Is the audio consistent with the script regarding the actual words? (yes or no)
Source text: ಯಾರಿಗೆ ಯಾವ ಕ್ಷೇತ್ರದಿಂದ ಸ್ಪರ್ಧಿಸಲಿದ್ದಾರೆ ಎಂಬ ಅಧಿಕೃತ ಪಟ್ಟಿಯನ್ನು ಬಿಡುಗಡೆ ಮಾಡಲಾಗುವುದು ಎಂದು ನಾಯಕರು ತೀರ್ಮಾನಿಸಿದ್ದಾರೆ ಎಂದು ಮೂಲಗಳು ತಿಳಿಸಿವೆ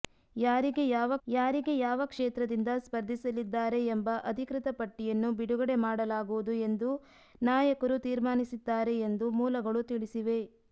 no